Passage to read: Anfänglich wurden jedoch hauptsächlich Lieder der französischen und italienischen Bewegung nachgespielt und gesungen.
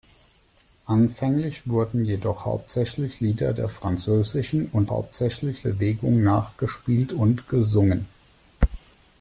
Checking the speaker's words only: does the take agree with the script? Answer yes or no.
no